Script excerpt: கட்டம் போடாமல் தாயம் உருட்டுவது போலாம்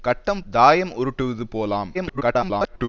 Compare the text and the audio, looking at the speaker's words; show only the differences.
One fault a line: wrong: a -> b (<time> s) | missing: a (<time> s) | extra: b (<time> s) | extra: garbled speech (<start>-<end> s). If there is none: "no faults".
missing: போடாமல் (0.4 s)
extra: garbled speech (1.9-2.9 s)